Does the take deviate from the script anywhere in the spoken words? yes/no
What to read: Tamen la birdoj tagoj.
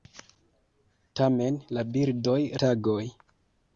no